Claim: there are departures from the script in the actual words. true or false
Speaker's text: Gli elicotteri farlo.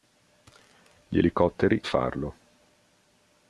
false